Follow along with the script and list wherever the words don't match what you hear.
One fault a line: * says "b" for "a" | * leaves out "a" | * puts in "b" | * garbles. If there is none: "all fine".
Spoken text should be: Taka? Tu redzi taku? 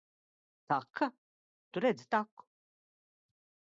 all fine